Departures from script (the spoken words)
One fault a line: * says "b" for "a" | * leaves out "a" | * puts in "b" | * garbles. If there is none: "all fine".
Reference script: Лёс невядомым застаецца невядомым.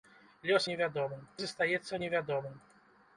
all fine